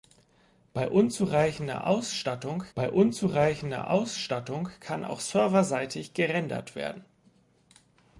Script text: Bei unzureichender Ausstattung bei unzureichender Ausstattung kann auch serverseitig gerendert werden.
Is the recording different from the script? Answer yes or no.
no